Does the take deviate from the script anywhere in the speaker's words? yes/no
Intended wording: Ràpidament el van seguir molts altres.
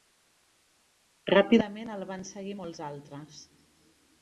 no